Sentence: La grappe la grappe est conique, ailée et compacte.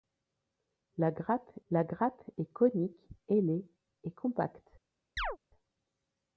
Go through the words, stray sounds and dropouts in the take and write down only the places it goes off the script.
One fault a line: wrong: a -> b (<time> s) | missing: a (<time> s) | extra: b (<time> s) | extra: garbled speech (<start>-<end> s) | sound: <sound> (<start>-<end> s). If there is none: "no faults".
sound: chirp (5.2-5.4 s)